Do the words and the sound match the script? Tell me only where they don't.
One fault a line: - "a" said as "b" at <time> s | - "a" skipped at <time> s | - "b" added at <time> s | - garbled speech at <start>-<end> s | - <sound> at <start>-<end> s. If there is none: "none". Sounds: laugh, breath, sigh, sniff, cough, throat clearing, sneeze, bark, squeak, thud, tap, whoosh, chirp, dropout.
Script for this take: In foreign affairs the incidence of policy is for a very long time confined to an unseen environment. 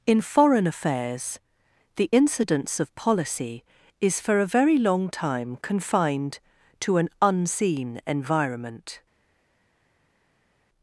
none